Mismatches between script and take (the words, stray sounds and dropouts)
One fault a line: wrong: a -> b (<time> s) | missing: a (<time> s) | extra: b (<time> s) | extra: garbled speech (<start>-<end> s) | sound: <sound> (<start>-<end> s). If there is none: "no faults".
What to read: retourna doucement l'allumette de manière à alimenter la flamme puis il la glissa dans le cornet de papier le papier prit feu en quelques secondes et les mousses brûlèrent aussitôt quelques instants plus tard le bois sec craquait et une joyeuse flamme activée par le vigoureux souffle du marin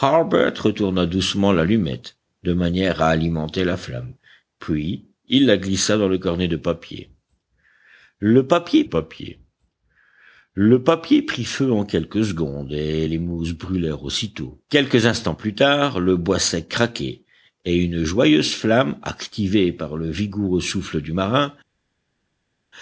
extra: papier le papier (8.8 s)